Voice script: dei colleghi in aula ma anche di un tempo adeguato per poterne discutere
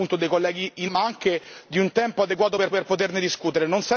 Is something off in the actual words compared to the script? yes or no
yes